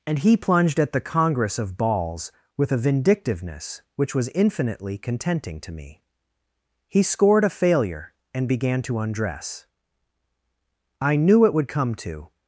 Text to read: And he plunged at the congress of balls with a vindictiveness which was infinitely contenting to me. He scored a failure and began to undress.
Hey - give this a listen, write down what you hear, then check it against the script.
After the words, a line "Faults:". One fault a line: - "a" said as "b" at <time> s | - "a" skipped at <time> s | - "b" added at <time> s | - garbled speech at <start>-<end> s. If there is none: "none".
And he plunged at the congress of balls with a vindictiveness which was infinitely contenting to me. He scored a failure and began to undress. I knew it would come to
Faults:
- "I knew it would come to" added at 11.0 s